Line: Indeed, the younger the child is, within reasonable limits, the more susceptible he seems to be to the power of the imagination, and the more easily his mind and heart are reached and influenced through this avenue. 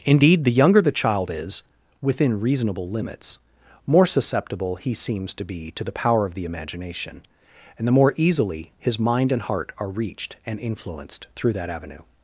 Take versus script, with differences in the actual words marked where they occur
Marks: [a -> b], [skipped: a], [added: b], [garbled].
Indeed, the younger the child is, within reasonable limits, [skipped: the] more susceptible he seems to be to the power of the imagination, and the more easily his mind and heart are reached and influenced through [this -> that] avenue.